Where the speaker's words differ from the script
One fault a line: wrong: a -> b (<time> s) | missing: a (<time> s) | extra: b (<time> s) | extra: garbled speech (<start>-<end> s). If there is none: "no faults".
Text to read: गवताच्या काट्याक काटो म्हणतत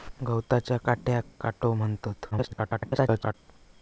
extra: garbled speech (2.3-3.3 s)